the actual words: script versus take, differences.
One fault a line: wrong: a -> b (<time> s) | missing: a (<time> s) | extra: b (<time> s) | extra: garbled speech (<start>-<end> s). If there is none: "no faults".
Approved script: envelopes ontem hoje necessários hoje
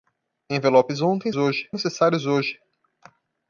no faults